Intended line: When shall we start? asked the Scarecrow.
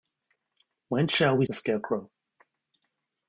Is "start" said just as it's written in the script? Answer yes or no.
no